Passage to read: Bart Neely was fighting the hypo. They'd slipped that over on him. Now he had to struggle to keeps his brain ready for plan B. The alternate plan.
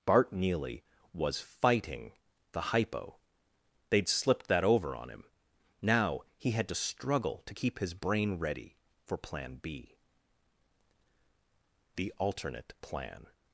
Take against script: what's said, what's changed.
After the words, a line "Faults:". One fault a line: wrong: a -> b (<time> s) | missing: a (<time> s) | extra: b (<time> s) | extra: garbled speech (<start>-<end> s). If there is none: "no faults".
Bart Neely was fighting the hypo. They'd slipped that over on him. Now he had to struggle to keep his brain ready for plan B. The alternate plan.
Faults:
wrong: keeps -> keep (7.5 s)